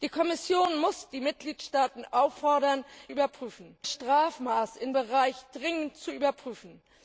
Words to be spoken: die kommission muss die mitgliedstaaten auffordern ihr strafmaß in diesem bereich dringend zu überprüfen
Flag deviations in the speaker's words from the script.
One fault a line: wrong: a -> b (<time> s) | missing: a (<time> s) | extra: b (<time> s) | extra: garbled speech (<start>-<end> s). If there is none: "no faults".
wrong: ihr -> überprüfen (3.1 s)
missing: diesem (4.9 s)